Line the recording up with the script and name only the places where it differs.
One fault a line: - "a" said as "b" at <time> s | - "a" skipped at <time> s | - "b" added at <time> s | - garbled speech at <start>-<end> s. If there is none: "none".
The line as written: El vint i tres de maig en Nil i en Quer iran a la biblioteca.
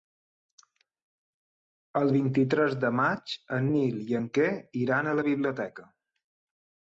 none